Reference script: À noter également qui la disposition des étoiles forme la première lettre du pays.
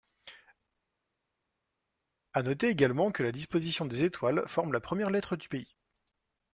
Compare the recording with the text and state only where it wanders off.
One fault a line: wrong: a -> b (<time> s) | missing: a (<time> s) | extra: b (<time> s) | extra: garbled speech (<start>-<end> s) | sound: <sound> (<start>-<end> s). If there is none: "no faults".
wrong: qui -> que (3.1 s)